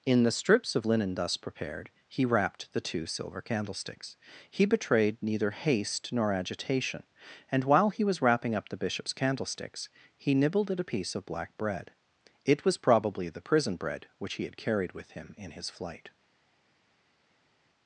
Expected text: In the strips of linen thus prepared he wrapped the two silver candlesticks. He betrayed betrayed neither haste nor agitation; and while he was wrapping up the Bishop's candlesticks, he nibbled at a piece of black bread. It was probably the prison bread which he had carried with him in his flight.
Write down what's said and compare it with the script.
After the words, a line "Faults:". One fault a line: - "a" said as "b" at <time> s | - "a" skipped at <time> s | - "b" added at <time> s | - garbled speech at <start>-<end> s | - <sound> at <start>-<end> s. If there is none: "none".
In the strips of linen thus prepared he wrapped the two silver candlesticks. He betrayed neither haste nor agitation; and while he was wrapping up the Bishop's candlesticks, he nibbled at a piece of black bread. It was probably the prison bread which he had carried with him in his flight.
Faults:
- "betrayed" skipped at 5.2 s